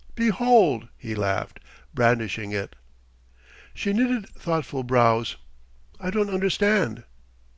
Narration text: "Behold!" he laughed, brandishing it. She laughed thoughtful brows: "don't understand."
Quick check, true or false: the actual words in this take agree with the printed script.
false